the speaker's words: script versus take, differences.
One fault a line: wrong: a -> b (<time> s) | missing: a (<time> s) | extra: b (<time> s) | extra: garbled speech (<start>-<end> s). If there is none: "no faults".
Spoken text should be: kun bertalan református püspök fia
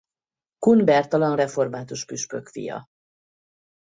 no faults